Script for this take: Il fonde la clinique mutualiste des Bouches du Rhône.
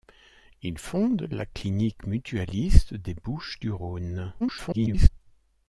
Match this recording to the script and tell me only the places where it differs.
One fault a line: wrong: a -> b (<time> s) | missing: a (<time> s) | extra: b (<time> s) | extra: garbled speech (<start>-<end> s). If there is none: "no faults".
extra: garbled speech (4.4-5.1 s)